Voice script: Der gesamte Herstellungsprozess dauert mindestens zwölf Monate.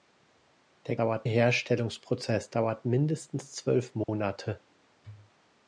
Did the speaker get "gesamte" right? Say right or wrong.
wrong